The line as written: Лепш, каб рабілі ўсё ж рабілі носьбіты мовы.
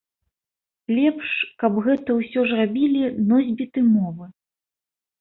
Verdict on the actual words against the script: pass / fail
fail